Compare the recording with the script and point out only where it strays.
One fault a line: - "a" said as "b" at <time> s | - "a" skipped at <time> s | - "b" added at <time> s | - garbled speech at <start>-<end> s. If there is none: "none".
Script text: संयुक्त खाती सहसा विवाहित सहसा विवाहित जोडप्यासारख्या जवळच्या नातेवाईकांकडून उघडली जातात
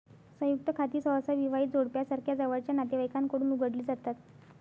- "सहसा विवाहित" skipped at 1.7 s